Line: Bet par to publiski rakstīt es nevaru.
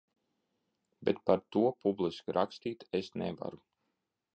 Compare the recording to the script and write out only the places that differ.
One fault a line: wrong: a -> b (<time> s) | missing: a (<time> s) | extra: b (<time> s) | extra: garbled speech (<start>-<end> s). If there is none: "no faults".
no faults